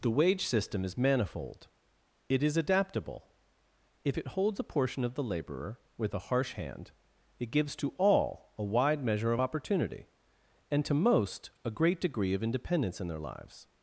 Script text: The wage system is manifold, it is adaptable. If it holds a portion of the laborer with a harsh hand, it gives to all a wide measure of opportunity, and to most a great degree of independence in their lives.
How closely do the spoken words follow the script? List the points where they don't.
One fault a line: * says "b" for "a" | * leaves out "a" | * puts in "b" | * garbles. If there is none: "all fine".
all fine